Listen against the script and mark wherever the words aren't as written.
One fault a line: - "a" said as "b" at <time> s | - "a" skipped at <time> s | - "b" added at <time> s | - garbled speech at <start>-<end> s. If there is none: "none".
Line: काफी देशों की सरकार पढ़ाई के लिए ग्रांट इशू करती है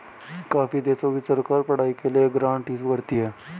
none